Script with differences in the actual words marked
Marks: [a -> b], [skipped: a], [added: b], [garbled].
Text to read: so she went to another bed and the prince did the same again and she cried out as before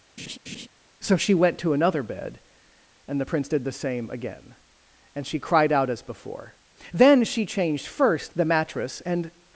so she went to another bed and the prince did the same again and she cried out as before [added: then she changed first the mattress and]